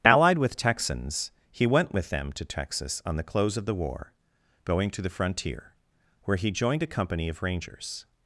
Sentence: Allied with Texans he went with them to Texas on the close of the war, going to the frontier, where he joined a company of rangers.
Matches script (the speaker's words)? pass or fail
pass